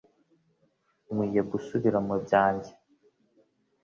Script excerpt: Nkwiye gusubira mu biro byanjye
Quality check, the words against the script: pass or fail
fail